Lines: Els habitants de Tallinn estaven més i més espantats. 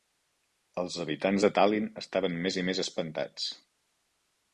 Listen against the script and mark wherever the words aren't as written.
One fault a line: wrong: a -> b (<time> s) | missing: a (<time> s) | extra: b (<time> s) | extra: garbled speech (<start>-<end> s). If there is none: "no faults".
no faults